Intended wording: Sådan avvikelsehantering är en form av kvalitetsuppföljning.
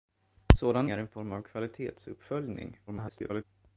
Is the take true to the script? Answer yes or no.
no